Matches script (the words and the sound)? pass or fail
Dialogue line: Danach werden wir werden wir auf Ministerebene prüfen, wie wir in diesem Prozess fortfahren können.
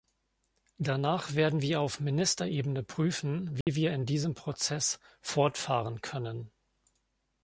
fail